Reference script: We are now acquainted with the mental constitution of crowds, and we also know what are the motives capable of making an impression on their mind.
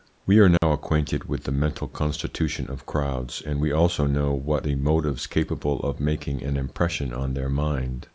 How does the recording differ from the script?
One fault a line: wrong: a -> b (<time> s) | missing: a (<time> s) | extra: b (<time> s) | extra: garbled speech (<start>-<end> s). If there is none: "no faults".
missing: are (4.7 s)